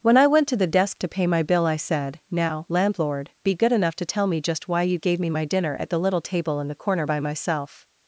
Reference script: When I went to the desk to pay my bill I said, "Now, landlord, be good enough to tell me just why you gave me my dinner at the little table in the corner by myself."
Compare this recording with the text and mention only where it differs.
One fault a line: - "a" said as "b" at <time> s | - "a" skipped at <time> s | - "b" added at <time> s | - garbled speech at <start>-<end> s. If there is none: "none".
none